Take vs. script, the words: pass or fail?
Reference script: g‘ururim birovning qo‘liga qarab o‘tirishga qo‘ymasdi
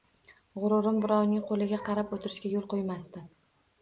fail